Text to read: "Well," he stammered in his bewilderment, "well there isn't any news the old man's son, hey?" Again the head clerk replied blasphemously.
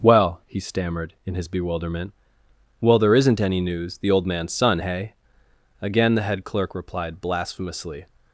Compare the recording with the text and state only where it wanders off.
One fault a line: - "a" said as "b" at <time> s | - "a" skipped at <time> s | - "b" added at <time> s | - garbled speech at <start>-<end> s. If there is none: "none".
none